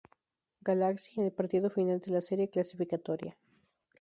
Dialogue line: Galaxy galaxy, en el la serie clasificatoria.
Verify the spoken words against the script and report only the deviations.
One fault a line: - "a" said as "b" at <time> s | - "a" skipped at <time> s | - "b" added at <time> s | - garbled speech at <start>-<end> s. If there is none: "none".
- "galaxy" skipped at 1.2 s
- "partido final de" added at 1.3 s